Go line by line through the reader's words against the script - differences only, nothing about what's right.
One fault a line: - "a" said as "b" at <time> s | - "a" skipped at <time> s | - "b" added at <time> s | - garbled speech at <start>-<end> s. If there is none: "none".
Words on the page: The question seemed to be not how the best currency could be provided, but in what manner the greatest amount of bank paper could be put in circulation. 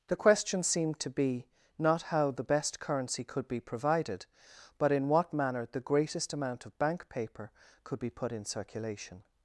none